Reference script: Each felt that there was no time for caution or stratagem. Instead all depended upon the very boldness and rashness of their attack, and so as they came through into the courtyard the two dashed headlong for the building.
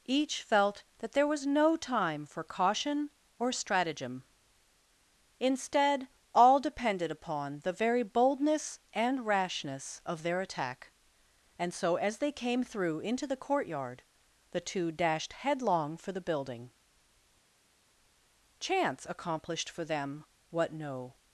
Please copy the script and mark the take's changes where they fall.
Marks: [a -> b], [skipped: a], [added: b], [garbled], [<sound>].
Each felt that there was no time for caution or stratagem. Instead all depended upon the very boldness and rashness of their attack, and so as they came through into the courtyard the two dashed headlong for the building. [added: Chance accomplished for them what no]